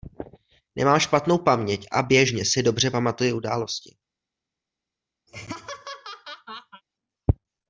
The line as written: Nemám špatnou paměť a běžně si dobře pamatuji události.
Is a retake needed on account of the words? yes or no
no